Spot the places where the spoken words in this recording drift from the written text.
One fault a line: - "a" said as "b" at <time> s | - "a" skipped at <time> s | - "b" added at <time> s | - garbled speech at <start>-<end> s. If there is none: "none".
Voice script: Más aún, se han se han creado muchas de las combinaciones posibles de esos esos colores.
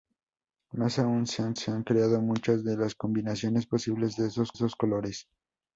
none